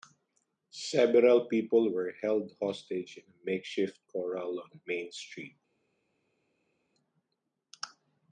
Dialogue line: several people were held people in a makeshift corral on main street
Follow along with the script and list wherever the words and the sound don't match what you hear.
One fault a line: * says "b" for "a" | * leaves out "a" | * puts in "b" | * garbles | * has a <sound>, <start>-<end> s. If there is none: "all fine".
* says "hostage" for "people"